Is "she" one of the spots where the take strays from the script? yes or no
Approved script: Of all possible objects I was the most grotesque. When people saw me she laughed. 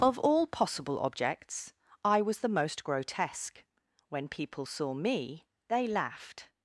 yes